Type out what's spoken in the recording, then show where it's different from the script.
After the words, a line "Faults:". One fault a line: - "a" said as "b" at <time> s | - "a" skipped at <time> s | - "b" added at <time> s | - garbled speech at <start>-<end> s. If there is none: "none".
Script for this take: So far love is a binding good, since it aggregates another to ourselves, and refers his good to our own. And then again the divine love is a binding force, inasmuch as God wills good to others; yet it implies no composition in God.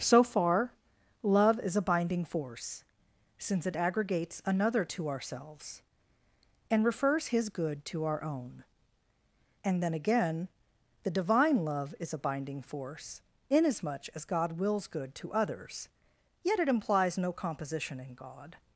So far love is a binding force, since it aggregates another to ourselves, and refers his good to our own. And then again the divine love is a binding force, inasmuch as God wills good to others; yet it implies no composition in God.
Faults:
- "good" said as "force" at 2.2 s